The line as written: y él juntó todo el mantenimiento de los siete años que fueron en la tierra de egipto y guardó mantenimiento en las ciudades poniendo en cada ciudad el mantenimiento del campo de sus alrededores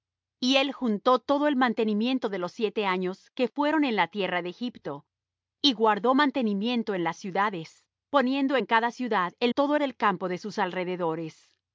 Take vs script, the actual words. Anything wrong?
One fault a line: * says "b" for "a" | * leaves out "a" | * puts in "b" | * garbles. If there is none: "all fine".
* says "todo" for "mantenimiento"